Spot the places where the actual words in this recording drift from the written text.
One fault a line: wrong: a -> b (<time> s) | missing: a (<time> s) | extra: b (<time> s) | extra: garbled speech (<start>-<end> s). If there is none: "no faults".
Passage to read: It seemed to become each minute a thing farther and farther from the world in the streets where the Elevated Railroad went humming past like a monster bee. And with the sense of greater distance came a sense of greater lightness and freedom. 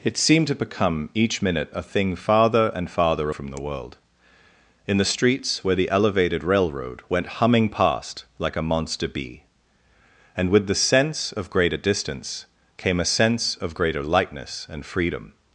no faults